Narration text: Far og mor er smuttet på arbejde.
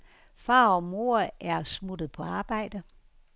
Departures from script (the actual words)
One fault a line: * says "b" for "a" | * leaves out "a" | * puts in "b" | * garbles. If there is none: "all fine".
all fine